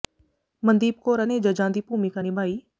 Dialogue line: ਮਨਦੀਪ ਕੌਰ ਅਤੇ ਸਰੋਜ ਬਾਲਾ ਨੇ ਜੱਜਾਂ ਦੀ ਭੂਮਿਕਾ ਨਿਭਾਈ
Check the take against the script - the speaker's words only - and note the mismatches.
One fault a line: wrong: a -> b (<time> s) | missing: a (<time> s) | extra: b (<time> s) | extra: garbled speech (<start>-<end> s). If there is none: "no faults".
missing: ਅਤੇ ਸਰੋਜ ਬਾਲਾ (1.2 s)